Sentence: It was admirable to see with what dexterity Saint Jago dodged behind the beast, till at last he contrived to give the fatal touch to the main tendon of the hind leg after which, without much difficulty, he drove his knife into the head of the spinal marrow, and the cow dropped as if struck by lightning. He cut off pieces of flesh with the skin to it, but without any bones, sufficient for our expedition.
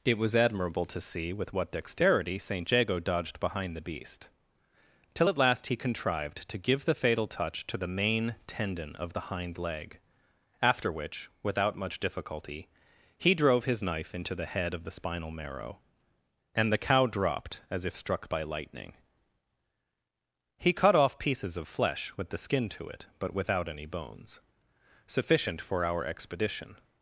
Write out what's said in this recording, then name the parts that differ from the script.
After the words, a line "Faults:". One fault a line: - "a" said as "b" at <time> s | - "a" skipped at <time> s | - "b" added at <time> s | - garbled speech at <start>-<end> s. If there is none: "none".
It was admirable to see with what dexterity Saint Jago dodged behind the beast, till at last he contrived to give the fatal touch to the main tendon of the hind leg after which, without much difficulty, he drove his knife into the head of the spinal marrow, and the cow dropped as if struck by lightning. He cut off pieces of flesh with the skin to it, but without any bones, sufficient for our expedition.
Faults:
none